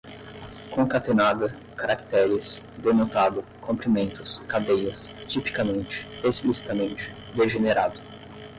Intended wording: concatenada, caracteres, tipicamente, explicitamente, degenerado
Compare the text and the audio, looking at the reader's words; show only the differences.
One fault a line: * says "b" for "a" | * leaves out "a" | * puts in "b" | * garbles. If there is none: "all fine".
* puts in "denotado comprimentos cadeias"